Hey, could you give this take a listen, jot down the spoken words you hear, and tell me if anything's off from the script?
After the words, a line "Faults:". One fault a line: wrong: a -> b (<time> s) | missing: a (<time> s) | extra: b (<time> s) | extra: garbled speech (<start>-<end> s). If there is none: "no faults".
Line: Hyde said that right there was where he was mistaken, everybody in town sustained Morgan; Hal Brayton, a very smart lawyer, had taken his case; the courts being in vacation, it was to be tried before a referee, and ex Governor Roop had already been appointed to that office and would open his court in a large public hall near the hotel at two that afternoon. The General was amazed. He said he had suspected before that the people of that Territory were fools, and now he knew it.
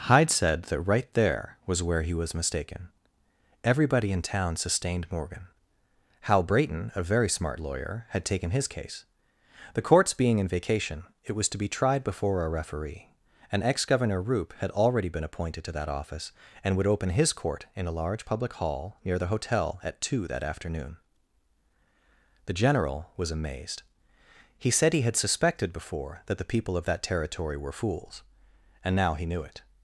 Hyde said that right there was where he was mistaken, everybody in town sustained Morgan; Hal Brayton, a very smart lawyer, had taken his case; the courts being in vacation, it was to be tried before a referee, and ex Governor Roop had already been appointed to that office and would open his court in a large public hall near the hotel at two that afternoon. The General was amazed. He said he had suspected before that the people of that Territory were fools, and now he knew it.
Faults:
no faults